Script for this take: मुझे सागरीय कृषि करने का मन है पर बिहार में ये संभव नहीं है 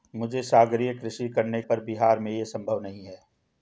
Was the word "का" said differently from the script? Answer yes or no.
yes